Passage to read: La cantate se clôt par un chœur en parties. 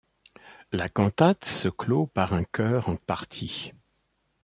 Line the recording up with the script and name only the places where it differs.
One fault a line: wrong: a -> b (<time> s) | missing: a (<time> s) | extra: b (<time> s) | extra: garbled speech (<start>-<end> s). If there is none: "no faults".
no faults